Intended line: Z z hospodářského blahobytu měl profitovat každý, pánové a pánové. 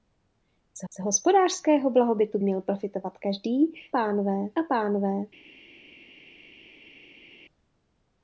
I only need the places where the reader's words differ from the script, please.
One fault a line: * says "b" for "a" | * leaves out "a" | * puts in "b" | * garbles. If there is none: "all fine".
all fine